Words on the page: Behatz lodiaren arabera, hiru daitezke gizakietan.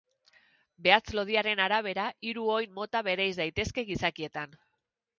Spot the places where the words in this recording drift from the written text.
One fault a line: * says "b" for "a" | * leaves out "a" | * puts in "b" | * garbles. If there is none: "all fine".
* puts in "oin mota bereiz"